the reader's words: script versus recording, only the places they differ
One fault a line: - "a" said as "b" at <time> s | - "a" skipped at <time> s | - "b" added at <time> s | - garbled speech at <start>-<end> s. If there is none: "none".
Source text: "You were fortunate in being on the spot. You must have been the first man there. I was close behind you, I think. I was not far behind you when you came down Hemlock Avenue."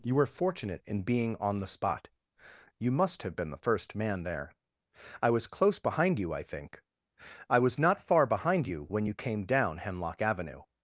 none